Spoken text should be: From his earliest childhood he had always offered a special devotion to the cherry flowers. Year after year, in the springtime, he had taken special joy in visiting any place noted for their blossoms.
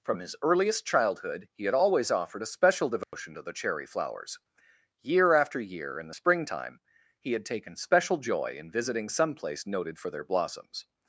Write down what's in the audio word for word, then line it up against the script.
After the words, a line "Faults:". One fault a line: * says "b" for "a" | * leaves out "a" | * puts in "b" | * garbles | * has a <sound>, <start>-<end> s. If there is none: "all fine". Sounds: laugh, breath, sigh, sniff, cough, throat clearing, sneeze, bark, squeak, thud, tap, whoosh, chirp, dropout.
From his earliest childhood he had always offered a special devotion to the cherry flowers. Year after year, in the springtime, he had taken special joy in visiting some place noted for their blossoms.
Faults:
* has a dropout, 3.0-3.1 s
* says "some" for "any"